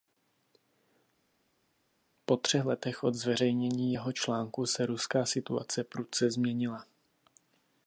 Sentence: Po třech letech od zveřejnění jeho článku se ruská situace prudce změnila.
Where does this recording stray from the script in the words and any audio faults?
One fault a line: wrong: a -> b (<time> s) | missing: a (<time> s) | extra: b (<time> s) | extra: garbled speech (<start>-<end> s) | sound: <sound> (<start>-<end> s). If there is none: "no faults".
no faults